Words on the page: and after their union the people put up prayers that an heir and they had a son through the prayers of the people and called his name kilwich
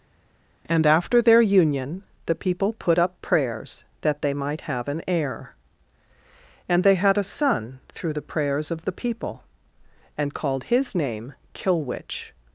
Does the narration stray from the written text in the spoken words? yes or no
yes